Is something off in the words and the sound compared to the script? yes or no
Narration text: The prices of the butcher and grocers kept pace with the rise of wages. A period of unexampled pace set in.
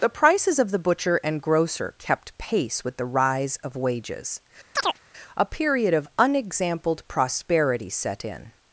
yes